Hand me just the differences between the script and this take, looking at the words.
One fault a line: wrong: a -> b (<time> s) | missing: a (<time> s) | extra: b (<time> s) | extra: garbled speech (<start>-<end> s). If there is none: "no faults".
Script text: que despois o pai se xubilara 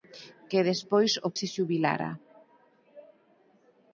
missing: pai (1.3 s)